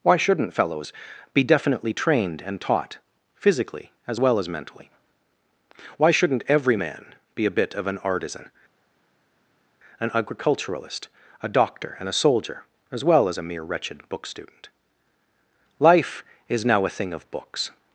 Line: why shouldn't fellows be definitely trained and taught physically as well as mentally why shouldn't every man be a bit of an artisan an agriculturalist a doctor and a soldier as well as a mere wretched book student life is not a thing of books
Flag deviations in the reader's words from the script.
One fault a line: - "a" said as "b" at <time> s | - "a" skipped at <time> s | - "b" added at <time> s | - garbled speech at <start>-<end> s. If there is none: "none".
- "not" said as "now" at 16.6 s